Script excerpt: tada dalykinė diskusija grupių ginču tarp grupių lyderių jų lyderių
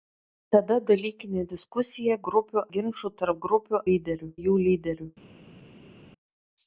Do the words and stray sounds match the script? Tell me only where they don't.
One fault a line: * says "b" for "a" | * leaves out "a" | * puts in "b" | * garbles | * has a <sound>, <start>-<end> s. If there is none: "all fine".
all fine